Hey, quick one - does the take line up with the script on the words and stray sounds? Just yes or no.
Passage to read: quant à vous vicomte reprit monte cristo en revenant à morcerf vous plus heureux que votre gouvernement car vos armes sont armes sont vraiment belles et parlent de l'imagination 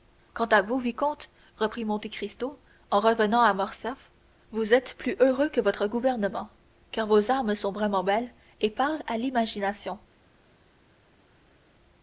no